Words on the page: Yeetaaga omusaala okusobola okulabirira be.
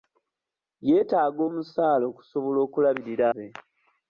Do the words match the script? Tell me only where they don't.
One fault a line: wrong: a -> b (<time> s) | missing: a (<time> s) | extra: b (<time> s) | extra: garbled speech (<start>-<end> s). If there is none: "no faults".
no faults